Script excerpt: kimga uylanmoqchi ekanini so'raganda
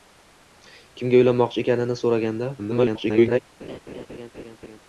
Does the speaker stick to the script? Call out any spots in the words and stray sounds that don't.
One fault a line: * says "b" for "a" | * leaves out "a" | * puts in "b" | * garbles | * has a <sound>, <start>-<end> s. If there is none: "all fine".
* garbles
* has a laugh, 3.6-4.8 s